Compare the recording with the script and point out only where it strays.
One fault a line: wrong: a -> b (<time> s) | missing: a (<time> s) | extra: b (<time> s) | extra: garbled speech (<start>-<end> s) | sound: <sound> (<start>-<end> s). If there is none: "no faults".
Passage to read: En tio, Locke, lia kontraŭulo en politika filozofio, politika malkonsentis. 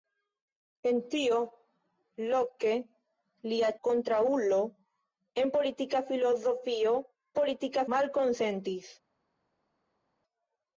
no faults